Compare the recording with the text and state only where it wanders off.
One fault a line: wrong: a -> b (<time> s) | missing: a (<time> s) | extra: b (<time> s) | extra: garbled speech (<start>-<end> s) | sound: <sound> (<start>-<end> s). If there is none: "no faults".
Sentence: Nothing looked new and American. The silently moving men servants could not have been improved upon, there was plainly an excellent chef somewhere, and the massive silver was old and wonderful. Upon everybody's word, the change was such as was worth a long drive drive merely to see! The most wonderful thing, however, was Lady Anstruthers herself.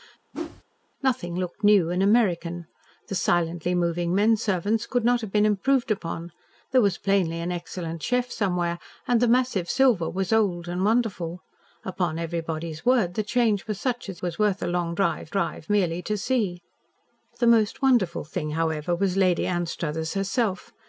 sound: whoosh (0.3-0.6 s)